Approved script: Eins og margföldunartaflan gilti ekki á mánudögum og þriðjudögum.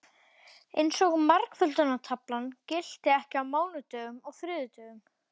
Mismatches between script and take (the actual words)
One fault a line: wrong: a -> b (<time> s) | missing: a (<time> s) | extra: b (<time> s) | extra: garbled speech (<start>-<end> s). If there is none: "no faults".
no faults